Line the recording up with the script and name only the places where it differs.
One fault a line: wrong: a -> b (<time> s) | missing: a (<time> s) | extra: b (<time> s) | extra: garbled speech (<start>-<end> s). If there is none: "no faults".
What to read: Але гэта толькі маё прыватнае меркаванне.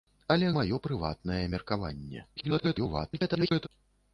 missing: гэта толькі (0.5 s)
extra: garbled speech (2.4-3.7 s)